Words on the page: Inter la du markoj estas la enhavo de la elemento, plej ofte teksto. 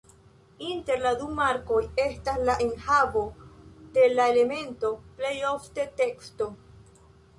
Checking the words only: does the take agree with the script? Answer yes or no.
yes